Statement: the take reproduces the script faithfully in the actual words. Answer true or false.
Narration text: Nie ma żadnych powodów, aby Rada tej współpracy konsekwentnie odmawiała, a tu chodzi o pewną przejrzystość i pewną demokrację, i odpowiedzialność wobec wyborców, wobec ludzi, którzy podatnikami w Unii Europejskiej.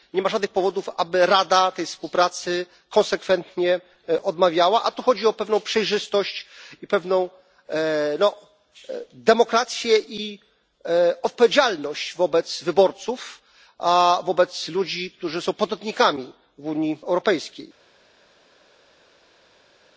false